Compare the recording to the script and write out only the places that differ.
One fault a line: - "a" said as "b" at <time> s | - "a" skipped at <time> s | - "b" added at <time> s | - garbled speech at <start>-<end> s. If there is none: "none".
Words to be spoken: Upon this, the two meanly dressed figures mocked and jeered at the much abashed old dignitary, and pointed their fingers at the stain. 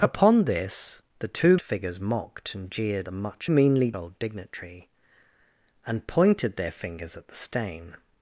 - "meanly dressed" skipped at 1.6 s
- "at" skipped at 3.1 s
- "abashed" said as "meanly" at 3.5 s